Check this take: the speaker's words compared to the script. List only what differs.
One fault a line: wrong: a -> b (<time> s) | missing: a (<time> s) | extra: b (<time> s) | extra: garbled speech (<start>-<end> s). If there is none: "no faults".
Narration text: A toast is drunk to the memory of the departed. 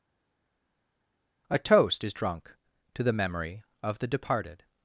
no faults